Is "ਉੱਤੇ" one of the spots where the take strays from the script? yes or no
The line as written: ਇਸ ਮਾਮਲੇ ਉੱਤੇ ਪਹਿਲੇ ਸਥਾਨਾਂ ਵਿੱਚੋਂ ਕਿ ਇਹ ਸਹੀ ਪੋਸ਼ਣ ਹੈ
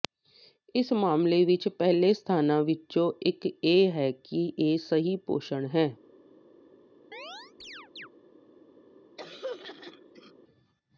yes